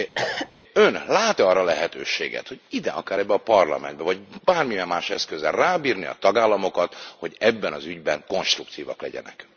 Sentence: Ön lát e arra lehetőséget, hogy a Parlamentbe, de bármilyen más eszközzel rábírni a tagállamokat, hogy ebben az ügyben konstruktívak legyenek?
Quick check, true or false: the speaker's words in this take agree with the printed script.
false